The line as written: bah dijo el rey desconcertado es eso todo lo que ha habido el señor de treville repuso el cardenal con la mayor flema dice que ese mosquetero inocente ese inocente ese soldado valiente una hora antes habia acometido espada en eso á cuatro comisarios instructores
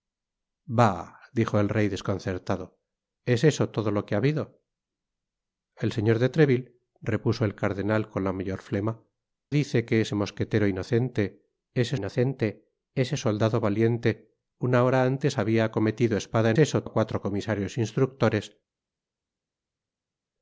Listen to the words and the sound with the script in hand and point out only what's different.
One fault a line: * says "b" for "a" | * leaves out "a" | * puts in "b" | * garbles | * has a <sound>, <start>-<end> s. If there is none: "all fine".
all fine